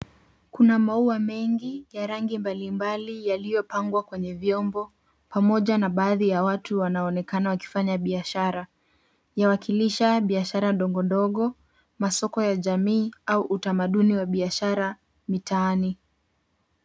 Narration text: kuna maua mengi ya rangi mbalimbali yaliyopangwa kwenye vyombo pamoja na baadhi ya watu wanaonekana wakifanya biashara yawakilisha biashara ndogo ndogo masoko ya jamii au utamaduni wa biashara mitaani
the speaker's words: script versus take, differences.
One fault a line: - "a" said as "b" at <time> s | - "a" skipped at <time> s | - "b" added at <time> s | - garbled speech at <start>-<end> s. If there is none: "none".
none